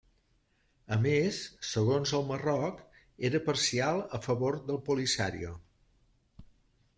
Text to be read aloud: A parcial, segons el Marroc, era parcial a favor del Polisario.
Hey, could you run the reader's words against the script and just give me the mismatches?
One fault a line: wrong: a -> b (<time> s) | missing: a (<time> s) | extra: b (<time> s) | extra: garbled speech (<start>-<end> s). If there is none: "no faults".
wrong: parcial -> més (1.0 s)